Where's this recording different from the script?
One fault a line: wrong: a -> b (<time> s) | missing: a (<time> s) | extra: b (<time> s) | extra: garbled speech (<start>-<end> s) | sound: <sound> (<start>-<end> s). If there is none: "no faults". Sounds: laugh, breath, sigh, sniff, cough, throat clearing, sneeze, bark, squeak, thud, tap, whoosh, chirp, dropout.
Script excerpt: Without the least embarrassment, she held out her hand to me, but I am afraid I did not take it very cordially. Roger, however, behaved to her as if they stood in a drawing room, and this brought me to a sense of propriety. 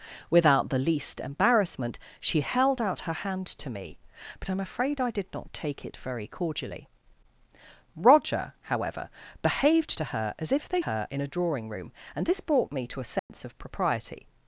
wrong: stood -> her (10.8 s)
sound: dropout (13.2-13.3 s)